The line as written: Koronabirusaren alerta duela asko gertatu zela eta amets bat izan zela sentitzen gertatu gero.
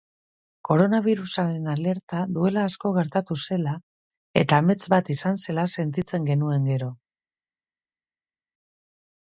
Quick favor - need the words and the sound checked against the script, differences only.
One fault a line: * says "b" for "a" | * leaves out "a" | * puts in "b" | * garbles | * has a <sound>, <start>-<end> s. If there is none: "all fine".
* says "genuen" for "gertatu"